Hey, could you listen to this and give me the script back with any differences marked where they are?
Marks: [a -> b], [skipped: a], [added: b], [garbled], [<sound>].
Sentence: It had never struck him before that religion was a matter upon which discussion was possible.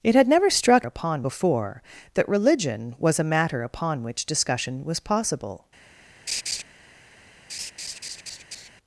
It had never struck [him -> upon] before that religion was a matter upon which discussion was possible. [laugh] [laugh]